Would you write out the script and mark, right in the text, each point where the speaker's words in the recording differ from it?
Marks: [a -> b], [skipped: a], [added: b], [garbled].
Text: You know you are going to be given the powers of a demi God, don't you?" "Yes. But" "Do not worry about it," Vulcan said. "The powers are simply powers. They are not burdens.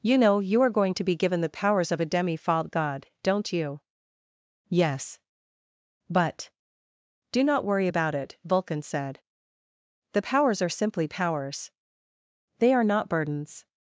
You know you are going to be given the powers of a demi [added: fault] God, don't you?" "Yes. But" "Do not worry about it," Vulcan said. "The powers are simply powers. They are not burdens.